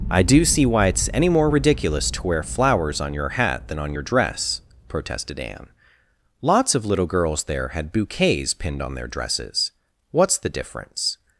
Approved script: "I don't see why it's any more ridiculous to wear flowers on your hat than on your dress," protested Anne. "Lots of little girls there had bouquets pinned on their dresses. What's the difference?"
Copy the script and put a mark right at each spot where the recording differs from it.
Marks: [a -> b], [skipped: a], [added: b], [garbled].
"I [don't -> do] see why it's any more ridiculous to wear flowers on your hat than on your dress," protested Anne. "Lots of little girls there had bouquets pinned on their dresses. What's the difference?"